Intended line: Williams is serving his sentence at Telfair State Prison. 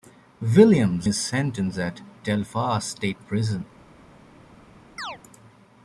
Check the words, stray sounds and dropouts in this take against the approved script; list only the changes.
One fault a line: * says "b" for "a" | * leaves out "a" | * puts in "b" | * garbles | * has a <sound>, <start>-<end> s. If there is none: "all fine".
* leaves out "is serving"
* has a chirp, 5.0-5.2 s